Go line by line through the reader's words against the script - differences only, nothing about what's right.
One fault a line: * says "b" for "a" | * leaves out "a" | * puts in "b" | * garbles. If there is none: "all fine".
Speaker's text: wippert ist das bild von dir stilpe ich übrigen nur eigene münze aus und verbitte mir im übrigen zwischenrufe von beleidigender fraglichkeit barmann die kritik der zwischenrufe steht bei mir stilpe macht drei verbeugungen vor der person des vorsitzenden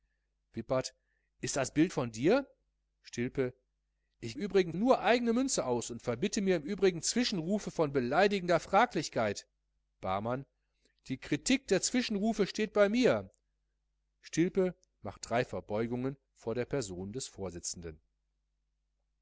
all fine